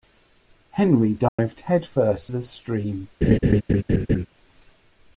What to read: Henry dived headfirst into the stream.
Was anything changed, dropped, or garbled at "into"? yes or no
yes